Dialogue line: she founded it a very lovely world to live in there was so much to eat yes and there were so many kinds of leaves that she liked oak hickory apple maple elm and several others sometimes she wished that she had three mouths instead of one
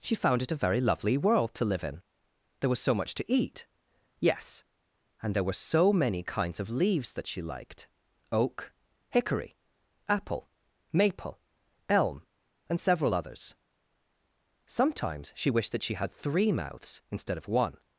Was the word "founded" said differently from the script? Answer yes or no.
yes